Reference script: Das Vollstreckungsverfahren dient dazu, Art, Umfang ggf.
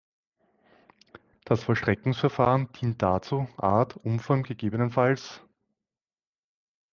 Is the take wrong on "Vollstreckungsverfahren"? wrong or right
right